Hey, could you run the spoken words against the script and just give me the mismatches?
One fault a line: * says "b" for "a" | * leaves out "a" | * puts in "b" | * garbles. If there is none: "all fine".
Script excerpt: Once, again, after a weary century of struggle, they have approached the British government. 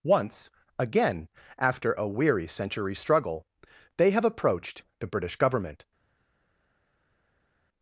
* leaves out "of"